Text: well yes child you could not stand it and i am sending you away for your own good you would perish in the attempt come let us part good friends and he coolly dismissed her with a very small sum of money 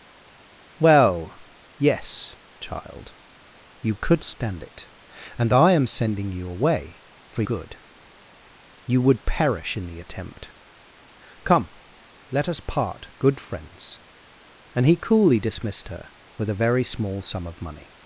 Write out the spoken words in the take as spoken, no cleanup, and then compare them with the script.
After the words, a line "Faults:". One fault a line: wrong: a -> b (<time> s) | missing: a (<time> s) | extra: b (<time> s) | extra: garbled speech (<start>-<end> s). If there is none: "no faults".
well yes child you could stand it and i am sending you away for good you would perish in the attempt come let us part good friends and he coolly dismissed her with a very small sum of money
Faults:
missing: not (4.2 s)
missing: your own (7.4 s)